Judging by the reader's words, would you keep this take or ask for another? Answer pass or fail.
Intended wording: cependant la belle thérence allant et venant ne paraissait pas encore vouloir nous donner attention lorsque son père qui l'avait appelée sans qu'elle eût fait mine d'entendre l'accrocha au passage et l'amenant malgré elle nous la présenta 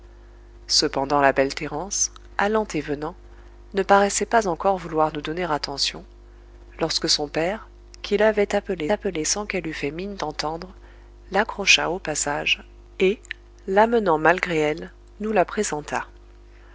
fail